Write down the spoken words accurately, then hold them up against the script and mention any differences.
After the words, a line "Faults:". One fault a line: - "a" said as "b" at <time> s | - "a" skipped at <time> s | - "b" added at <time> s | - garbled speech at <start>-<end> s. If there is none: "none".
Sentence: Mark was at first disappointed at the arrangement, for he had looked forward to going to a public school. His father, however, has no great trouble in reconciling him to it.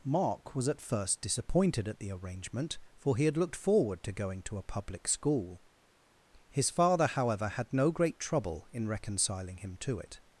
Mark was at first disappointed at the arrangement, for he had looked forward to going to a public school. His father, however, had no great trouble in reconciling him to it.
Faults:
- "has" said as "had" at 7.5 s